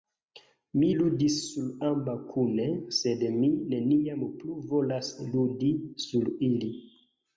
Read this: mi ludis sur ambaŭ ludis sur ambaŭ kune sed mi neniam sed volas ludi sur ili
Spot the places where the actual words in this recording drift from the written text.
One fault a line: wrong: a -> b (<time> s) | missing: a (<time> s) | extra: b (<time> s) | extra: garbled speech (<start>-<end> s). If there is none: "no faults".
missing: ludis sur ambaŭ (2.1 s)
wrong: sed -> plu (4.4 s)